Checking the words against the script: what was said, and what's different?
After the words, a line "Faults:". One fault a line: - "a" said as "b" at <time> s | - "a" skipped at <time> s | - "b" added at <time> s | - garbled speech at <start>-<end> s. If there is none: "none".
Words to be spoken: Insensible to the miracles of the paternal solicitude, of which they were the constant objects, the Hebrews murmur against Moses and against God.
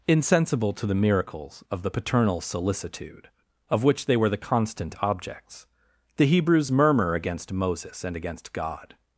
Insensible to the miracles of the paternal solicitude, of which they were the constant objects, the Hebrews murmur against Moses and against God.
Faults:
none